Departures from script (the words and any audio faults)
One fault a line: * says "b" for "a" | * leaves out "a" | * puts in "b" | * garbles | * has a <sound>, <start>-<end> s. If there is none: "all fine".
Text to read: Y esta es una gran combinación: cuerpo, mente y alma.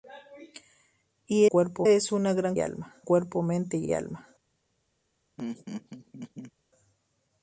* says "cuerpo" for "esta"
* says "alma" for "combinación"
* puts in "y"
* has a laugh, 5.4-6.5 s